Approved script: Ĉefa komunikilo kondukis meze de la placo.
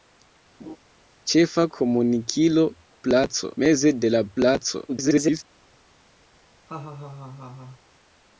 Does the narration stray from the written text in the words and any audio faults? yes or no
yes